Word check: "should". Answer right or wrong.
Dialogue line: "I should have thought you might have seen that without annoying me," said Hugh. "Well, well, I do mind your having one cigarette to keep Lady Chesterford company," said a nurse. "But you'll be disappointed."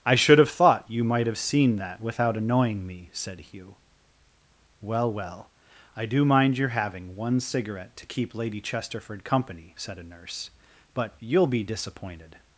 right